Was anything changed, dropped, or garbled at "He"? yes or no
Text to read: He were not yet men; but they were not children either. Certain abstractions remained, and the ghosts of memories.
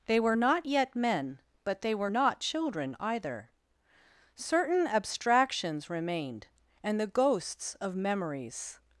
yes